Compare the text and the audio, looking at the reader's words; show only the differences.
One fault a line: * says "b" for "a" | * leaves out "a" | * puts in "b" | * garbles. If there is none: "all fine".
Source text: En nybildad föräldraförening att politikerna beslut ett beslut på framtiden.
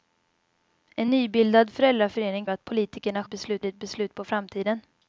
all fine